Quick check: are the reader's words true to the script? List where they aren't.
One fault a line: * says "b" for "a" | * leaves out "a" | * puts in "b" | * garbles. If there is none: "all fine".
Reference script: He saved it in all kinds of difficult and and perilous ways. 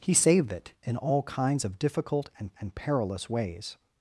all fine